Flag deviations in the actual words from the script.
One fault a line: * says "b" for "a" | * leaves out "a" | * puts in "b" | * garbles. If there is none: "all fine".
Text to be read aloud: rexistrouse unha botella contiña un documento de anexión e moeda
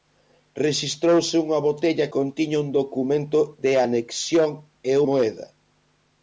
all fine